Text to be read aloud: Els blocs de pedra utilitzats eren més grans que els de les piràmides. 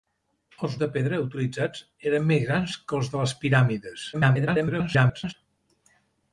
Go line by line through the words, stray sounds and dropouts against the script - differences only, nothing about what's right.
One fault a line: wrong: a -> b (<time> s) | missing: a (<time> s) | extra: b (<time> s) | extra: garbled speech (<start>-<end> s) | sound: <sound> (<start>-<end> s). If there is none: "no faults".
missing: blocs (0.8 s)
extra: garbled speech (4.1-5.3 s)